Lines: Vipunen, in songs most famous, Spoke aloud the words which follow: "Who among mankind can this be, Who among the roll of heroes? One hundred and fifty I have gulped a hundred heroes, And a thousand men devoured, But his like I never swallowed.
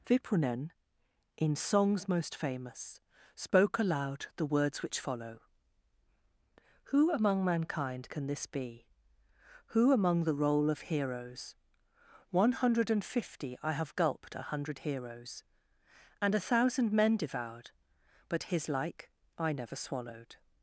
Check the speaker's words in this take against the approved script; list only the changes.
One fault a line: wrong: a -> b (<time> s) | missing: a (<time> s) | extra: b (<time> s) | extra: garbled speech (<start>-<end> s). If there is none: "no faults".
no faults